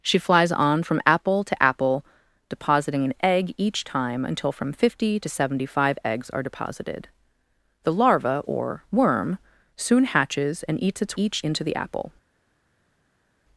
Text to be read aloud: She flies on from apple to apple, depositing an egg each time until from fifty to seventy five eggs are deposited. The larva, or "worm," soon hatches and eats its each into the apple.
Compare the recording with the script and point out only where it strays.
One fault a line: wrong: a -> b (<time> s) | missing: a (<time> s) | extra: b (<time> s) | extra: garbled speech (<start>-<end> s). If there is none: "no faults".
no faults